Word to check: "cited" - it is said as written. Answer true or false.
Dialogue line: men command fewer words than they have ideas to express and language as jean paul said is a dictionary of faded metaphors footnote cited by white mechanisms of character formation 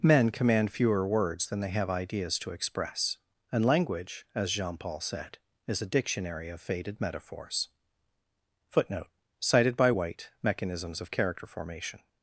true